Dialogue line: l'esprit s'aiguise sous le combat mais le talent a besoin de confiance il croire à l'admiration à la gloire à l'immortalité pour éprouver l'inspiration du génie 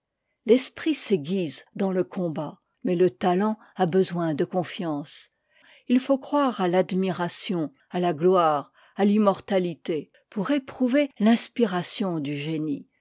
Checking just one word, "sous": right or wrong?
wrong